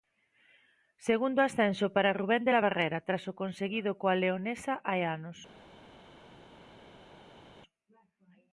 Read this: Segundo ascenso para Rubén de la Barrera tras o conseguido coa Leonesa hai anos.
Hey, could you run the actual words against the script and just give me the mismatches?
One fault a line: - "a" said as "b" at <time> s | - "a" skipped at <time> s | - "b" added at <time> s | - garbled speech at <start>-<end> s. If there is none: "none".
none